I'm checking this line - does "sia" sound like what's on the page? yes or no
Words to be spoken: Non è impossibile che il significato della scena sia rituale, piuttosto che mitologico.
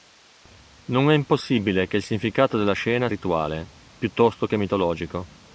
no